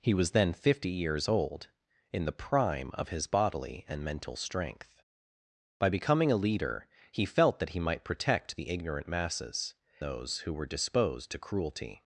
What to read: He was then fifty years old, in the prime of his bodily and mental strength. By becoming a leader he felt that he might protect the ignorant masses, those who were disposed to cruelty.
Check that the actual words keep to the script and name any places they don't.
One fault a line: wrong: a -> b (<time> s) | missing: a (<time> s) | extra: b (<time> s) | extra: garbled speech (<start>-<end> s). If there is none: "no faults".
no faults